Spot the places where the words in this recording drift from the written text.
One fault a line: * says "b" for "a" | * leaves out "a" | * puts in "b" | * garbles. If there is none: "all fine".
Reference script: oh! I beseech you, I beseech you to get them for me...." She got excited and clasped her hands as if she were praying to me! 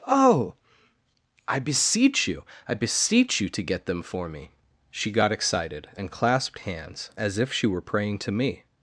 * leaves out "her"